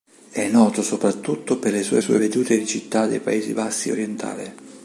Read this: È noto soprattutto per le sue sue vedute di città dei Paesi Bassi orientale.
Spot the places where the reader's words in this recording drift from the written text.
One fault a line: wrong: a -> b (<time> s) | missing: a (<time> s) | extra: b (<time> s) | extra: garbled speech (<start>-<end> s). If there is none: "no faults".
no faults